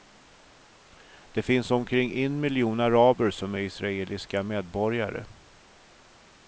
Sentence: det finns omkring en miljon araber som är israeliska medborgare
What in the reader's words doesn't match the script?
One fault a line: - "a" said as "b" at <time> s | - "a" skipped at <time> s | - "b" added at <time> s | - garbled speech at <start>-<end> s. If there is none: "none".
none